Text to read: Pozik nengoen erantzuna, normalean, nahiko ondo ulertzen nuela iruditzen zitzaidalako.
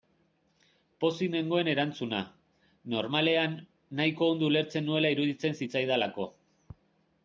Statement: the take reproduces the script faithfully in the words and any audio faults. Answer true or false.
true